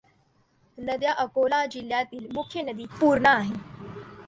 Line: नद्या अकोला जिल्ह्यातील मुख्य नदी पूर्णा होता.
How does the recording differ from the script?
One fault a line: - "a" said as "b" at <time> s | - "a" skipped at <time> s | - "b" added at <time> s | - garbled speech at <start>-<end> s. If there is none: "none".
- "होता" said as "आहे" at 3.3 s